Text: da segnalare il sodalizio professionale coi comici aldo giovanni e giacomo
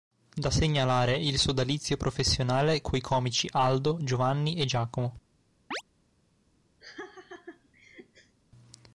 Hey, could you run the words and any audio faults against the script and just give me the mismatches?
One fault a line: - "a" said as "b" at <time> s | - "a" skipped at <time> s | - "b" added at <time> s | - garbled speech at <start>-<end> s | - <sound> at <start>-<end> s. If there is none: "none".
- chirp at 5.7-5.8 s
- laugh at 6.8-8.4 s